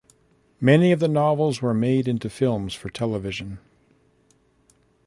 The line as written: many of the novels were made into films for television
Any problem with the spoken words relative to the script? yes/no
no